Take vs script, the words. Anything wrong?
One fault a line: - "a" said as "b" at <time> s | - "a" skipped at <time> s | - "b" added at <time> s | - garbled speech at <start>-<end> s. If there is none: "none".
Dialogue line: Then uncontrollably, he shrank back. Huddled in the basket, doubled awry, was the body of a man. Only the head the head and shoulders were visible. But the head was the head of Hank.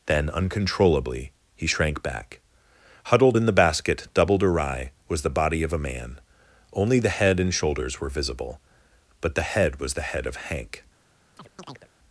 - "the head" skipped at 7.4 s